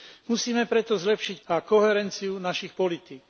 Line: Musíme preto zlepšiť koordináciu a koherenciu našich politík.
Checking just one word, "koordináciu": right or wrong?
wrong